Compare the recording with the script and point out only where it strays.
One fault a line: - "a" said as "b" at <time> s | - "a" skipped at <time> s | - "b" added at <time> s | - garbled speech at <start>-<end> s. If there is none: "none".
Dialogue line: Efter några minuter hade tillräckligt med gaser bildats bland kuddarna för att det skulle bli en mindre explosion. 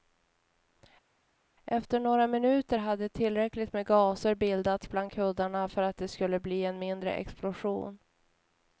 none